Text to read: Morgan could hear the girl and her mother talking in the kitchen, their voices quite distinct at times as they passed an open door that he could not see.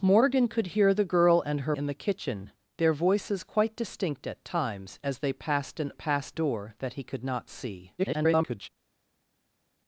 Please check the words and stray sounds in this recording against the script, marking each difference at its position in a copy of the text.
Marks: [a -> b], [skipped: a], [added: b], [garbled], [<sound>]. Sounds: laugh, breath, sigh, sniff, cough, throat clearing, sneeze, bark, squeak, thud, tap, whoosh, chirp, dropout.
Morgan could hear the girl and her [skipped: mother talking] in the kitchen, their voices quite distinct at times as they passed an [open -> passed] door that he could not see. [garbled]